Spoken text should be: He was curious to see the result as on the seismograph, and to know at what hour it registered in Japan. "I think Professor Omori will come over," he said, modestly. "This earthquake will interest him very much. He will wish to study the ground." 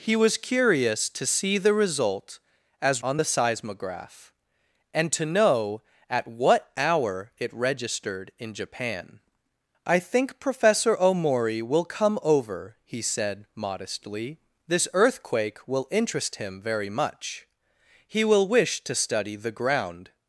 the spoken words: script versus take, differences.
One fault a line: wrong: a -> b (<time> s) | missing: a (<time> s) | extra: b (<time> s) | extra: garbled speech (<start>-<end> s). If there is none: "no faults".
no faults